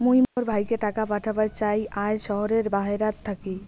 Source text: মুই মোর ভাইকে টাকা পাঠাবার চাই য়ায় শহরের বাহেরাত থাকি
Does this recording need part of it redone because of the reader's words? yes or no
no